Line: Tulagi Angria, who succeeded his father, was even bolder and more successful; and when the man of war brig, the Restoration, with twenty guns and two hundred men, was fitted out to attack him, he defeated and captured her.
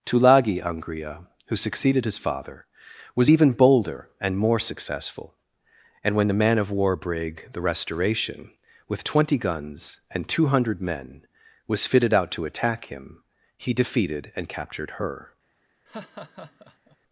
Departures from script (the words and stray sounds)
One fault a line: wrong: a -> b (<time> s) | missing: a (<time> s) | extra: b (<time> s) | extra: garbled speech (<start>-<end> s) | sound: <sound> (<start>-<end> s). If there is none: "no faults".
sound: laugh (15.9-17.0 s)